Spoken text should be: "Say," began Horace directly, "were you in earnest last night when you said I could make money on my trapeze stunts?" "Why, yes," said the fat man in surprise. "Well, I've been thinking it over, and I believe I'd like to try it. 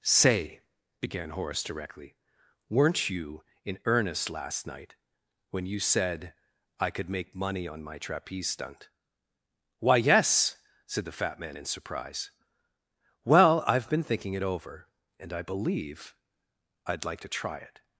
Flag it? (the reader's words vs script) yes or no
yes